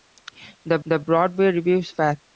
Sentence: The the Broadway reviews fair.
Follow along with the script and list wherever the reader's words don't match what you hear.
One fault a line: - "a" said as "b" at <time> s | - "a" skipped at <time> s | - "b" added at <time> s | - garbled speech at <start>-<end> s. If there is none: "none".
none